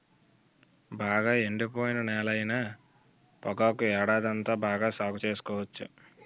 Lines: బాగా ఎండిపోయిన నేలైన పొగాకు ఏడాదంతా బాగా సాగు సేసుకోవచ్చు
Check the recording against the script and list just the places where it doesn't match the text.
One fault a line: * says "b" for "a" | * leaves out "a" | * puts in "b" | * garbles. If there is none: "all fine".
all fine